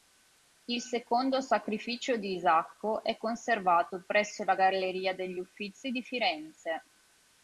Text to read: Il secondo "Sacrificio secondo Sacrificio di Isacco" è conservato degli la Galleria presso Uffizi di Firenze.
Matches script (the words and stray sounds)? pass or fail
fail